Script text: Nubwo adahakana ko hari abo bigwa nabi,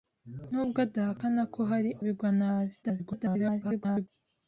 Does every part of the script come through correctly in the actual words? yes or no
no